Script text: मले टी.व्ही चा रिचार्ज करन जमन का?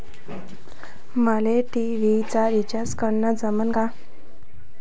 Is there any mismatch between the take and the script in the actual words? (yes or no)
no